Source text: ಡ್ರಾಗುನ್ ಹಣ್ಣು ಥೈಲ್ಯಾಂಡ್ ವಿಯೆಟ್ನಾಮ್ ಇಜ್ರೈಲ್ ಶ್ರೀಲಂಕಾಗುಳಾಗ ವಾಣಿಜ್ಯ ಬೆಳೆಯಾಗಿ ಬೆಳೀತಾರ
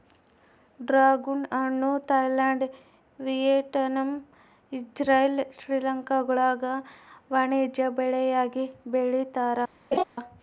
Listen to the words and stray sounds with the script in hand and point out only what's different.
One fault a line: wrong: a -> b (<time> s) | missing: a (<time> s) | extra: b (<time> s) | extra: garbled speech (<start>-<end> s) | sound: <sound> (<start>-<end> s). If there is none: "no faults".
sound: laugh (9.9-10.0 s)